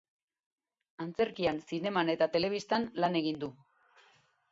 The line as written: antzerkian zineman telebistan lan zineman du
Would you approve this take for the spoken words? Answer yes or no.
no